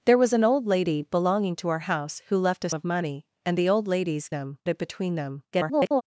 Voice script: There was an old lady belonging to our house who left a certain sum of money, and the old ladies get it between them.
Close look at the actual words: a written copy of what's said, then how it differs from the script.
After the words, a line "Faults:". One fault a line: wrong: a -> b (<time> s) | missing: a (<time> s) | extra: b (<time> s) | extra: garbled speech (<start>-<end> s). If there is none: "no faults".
There was an old lady belonging to our house who left a of money, and the old ladies them it between them. [garbled]
Faults:
missing: certain sum (2.7 s)
wrong: get -> them (4.3 s)
extra: garbled speech (5.5-6.0 s)